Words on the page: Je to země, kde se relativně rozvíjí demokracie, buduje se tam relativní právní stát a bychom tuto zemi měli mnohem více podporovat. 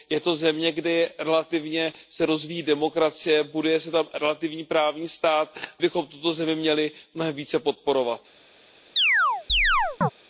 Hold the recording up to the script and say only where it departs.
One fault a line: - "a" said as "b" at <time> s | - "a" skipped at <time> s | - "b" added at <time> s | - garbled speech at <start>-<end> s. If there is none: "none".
none